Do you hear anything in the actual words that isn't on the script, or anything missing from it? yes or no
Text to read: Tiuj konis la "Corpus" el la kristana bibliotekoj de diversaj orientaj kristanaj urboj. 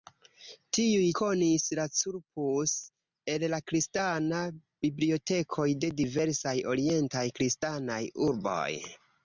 no